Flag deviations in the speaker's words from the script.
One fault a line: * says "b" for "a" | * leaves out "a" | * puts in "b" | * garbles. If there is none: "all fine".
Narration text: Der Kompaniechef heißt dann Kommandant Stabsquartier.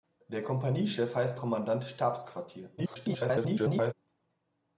* leaves out "dann"
* garbles